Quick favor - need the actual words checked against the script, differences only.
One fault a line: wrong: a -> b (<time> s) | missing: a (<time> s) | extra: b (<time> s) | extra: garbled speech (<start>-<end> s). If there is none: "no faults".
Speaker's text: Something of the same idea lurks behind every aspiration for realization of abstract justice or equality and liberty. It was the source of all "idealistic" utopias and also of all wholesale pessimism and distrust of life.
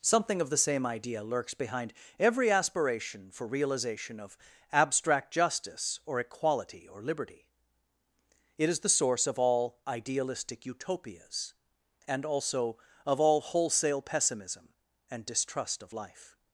wrong: and -> or (6.9 s)
wrong: was -> is (8.7 s)